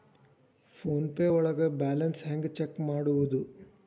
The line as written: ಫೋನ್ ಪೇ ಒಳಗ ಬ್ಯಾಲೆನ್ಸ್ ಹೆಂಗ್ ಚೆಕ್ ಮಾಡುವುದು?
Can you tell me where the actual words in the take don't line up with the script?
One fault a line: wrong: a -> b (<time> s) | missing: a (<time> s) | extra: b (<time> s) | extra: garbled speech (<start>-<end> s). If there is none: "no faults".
no faults